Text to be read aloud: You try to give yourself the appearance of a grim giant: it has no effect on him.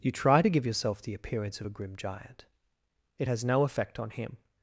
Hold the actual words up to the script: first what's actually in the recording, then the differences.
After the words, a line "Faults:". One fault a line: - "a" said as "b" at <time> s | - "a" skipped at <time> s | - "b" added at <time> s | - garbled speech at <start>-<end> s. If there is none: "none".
You try to give yourself the appearance of a grim giant: it has no effect on him.
Faults:
none